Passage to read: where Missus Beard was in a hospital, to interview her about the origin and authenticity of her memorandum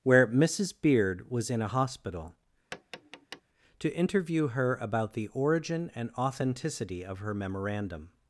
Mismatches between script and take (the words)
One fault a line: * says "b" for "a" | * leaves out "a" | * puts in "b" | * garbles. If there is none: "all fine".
all fine